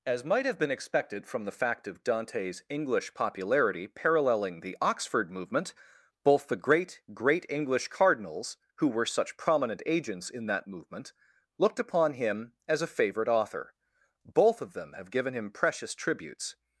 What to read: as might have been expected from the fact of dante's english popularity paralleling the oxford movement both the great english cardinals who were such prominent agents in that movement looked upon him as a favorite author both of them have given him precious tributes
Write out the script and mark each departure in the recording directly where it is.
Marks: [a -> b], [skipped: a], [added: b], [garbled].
as might have been expected from the fact of dante's english popularity paralleling the oxford movement both the great [added: great] english cardinals who were such prominent agents in that movement looked upon him as a favorite author both of them have given him precious tributes